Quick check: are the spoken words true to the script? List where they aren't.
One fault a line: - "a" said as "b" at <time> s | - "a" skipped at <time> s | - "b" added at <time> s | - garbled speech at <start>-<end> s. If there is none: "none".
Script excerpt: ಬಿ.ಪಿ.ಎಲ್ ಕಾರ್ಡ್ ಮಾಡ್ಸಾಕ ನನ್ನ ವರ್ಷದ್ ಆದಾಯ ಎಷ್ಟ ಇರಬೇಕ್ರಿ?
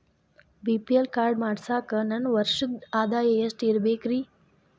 none